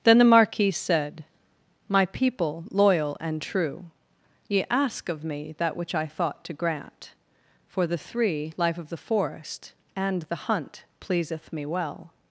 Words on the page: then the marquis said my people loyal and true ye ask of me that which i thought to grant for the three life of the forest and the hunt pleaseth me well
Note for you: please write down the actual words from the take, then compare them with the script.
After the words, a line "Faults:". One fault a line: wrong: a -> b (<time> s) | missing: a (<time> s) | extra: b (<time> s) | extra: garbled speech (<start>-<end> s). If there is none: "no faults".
then the marquis said my people loyal and true ye ask of me that which i thought to grant for the three life of the forest and the hunt pleaseth me well
Faults:
no faults